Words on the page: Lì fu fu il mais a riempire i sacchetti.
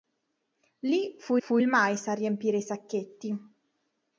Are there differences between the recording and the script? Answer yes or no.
no